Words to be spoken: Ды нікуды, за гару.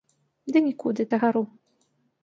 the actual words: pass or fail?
pass